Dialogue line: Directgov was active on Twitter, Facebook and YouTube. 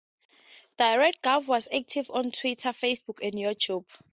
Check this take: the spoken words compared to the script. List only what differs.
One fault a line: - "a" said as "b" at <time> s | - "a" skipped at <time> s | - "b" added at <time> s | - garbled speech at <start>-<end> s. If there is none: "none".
none